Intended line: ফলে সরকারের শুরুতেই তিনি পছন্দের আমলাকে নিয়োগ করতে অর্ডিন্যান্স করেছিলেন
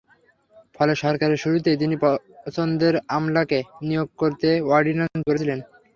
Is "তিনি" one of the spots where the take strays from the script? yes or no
no